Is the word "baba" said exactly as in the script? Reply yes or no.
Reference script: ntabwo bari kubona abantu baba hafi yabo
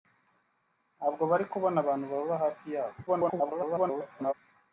yes